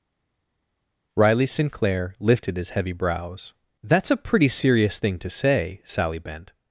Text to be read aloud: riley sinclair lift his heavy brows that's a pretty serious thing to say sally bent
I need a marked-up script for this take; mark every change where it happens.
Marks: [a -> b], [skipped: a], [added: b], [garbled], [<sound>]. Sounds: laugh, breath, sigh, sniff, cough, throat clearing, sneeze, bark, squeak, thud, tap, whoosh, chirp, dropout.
riley sinclair [lift -> lifted] his heavy brows that's a pretty serious thing to say sally bent